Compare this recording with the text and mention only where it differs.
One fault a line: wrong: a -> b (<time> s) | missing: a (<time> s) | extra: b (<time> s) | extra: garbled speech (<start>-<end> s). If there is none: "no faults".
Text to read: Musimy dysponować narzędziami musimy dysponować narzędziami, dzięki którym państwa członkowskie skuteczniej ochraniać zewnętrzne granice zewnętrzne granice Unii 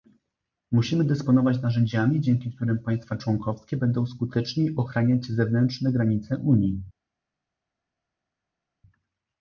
missing: musimy dysponować narzędziami (2.2 s)
extra: będą (3.8 s)
missing: zewnętrzne granice (6.4 s)